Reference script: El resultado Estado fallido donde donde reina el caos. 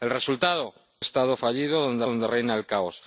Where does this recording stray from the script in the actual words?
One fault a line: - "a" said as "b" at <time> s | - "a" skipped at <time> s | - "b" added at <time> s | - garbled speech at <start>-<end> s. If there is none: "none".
none